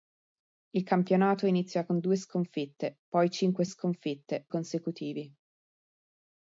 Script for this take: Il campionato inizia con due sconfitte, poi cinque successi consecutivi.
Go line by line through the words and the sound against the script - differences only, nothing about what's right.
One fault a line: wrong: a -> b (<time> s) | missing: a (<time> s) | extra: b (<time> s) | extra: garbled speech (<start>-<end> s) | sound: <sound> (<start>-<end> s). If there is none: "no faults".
wrong: successi -> sconfitte (3.6 s)